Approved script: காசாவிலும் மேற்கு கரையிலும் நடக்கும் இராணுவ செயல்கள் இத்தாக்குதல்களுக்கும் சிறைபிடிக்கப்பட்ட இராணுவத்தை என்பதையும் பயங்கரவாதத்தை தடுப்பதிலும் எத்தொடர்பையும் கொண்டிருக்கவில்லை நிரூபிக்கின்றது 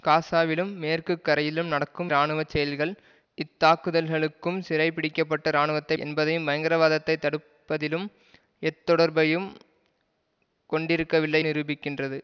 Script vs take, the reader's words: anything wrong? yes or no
no